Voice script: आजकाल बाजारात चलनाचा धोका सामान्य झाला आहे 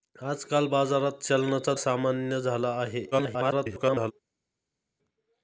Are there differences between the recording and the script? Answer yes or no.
yes